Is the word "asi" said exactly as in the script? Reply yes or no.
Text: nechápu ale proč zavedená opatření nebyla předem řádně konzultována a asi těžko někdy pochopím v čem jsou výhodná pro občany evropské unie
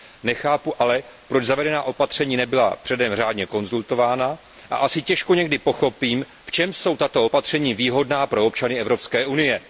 yes